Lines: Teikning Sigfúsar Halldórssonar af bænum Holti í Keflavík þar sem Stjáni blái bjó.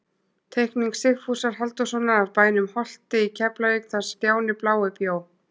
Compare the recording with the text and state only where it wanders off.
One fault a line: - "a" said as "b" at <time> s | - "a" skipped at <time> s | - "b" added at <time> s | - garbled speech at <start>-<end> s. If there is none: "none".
- "sem" skipped at 4.1 s